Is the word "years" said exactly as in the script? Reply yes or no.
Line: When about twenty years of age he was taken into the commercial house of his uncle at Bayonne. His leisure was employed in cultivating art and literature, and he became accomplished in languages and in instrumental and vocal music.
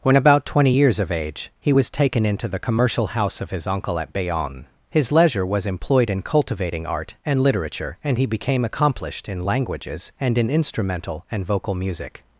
yes